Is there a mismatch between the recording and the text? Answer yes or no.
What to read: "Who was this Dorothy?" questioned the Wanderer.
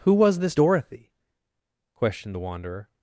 no